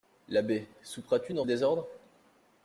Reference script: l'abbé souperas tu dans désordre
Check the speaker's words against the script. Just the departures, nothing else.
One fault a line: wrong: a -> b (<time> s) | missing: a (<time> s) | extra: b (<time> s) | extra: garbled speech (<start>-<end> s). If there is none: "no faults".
no faults